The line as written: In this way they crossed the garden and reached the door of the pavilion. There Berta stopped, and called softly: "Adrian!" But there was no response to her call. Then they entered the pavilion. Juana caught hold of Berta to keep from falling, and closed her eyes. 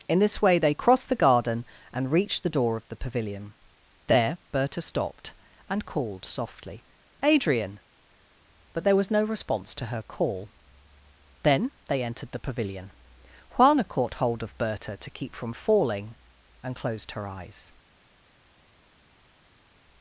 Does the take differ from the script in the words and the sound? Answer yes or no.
no